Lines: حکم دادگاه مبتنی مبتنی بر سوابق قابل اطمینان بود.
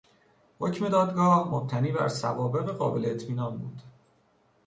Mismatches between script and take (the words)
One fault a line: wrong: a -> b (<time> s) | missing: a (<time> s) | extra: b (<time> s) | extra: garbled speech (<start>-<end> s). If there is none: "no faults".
missing: مبتنی (1.9 s)